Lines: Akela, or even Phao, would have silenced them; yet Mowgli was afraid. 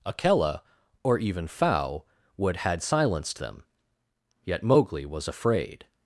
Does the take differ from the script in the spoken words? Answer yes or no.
yes